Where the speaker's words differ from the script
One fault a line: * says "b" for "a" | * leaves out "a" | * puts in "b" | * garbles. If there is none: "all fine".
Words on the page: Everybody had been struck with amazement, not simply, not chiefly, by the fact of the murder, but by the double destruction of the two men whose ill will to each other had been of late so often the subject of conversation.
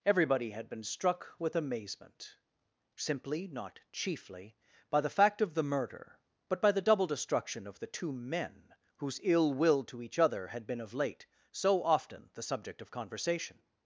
* leaves out "not"